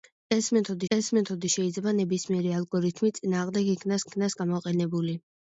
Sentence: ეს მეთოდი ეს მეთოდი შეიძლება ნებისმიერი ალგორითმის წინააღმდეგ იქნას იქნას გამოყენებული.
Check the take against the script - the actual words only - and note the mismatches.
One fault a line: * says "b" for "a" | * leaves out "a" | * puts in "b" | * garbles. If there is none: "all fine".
all fine